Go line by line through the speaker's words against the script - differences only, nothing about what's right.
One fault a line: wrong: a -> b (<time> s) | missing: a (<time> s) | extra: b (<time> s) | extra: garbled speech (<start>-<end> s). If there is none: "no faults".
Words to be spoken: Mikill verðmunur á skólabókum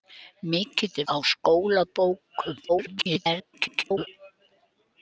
missing: verðmunur (1.0 s)
extra: garbled speech (2.7-4.1 s)